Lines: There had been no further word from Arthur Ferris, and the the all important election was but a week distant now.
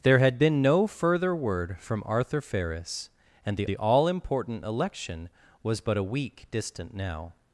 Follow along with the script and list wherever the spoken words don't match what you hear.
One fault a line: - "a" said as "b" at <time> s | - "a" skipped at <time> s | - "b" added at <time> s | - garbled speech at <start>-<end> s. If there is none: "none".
none